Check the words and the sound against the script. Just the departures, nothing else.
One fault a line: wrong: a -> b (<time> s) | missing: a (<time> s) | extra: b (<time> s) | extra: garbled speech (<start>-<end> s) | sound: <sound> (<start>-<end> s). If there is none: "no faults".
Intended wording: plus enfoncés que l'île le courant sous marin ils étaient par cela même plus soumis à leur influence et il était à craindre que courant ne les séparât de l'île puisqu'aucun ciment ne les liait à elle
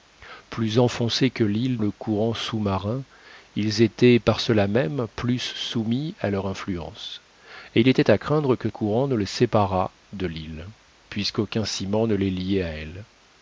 no faults